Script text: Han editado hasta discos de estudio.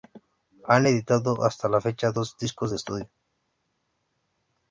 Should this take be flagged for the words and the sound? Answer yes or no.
yes